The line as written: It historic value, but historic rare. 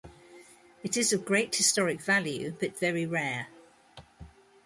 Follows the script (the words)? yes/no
no